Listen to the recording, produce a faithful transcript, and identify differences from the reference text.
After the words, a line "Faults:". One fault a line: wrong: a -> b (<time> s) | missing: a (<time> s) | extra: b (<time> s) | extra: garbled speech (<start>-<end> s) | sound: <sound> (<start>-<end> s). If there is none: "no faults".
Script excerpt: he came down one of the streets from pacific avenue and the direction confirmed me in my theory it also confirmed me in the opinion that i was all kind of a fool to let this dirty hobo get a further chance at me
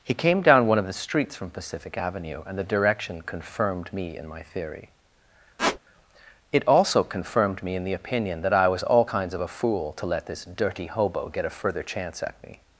he came down one of the streets from pacific avenue and the direction confirmed me in my theory it also confirmed me in the opinion that i was all kinds of a fool to let this dirty hobo get a further chance at me
Faults:
sound: squeak (5.6-5.8 s)
wrong: kind -> kinds (9.0 s)